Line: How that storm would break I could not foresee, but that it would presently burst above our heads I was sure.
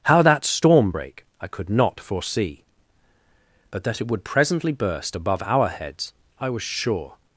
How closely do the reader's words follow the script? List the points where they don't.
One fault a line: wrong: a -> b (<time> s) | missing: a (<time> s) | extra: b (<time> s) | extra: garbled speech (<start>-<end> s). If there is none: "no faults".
missing: would (0.9 s)